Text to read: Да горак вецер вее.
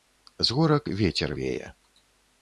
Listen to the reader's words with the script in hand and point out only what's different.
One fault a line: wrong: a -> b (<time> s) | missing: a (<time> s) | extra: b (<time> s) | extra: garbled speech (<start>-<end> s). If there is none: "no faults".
wrong: Да -> З (0.4 s)